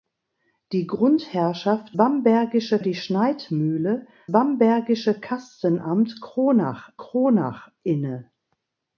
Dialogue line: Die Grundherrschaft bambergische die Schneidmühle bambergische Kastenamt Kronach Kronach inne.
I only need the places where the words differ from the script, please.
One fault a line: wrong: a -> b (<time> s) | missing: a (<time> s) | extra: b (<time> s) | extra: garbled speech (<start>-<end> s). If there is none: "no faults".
no faults